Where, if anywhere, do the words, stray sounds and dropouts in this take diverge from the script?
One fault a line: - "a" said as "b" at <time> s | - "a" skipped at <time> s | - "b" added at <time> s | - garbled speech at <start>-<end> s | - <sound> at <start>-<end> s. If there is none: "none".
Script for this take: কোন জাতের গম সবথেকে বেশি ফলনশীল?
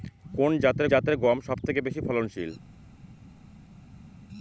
- "জাতের" added at 0.9 s